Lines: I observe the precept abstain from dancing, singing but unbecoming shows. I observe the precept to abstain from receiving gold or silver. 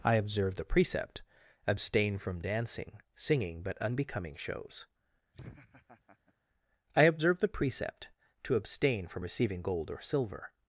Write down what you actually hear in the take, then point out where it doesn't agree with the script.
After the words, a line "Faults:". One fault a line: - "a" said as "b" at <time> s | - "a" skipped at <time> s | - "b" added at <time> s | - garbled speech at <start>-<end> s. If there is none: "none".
I observe the precept abstain from dancing, singing but unbecoming shows. I observe the precept to abstain from receiving gold or silver.
Faults:
none